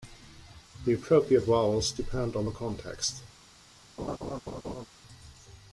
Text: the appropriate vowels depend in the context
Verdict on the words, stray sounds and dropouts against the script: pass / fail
fail